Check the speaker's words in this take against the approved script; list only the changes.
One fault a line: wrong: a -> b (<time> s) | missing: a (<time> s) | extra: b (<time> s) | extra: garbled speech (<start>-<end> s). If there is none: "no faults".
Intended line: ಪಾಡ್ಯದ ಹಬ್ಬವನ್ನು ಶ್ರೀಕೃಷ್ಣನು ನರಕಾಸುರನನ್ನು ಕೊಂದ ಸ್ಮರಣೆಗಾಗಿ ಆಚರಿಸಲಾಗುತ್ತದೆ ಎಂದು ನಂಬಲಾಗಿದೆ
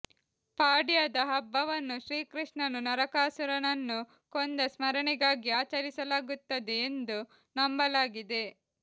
no faults